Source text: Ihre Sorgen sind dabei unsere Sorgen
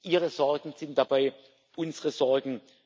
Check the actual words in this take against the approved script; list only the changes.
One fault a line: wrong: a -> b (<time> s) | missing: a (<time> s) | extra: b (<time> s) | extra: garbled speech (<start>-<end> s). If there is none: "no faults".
no faults